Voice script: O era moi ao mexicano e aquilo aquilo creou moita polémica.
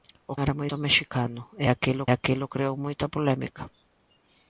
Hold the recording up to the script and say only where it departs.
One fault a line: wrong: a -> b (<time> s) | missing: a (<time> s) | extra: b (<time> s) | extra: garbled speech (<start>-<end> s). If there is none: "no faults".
no faults